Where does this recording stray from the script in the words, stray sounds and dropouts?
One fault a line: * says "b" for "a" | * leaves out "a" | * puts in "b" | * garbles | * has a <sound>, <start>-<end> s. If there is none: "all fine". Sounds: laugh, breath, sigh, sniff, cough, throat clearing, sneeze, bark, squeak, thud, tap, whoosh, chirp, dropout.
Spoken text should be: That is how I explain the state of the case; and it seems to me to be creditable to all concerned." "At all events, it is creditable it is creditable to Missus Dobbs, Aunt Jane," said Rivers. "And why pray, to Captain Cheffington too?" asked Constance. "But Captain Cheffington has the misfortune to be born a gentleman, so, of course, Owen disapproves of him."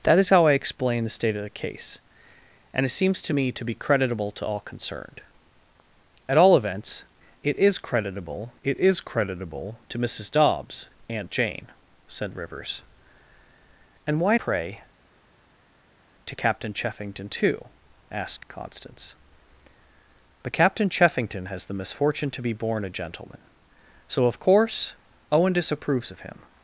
all fine